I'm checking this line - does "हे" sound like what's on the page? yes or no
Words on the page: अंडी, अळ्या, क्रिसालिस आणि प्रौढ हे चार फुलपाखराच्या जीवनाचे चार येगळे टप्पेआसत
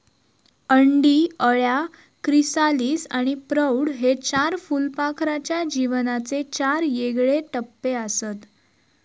yes